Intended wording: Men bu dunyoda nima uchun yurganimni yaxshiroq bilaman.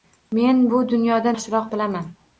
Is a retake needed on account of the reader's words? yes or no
yes